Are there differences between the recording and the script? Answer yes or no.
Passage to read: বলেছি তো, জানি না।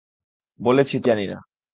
no